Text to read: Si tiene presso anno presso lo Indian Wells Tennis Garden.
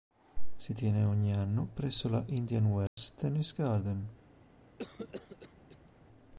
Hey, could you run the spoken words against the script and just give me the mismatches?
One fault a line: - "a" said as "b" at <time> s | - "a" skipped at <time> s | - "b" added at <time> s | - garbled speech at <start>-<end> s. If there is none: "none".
- "presso" said as "ogni" at 1.0 s
- "lo" said as "la" at 2.1 s